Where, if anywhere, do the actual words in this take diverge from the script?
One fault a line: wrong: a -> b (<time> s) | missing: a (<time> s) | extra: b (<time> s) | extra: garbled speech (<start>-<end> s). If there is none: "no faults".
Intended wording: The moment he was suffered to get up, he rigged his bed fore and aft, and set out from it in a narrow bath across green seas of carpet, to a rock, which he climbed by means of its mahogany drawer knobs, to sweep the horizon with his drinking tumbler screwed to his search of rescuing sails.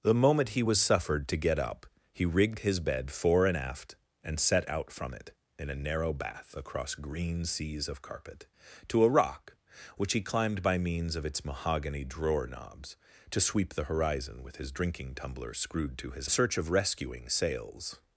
no faults